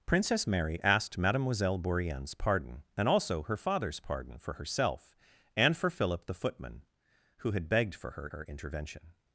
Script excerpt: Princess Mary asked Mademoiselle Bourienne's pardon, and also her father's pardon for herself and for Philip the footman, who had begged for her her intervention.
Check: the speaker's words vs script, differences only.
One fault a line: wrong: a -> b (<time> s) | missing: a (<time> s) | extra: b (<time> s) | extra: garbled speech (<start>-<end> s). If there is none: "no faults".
no faults